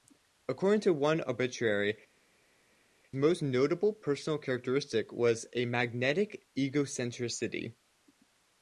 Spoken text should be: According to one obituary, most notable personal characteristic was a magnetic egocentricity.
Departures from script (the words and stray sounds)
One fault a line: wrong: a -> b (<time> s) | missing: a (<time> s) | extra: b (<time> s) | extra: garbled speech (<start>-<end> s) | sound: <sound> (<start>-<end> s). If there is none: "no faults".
no faults